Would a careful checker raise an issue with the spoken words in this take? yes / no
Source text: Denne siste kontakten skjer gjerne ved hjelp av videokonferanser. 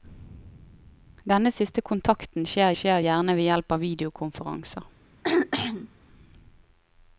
yes